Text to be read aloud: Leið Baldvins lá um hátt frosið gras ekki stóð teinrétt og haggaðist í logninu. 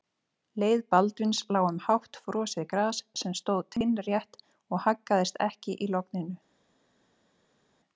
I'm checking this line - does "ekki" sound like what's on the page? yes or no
no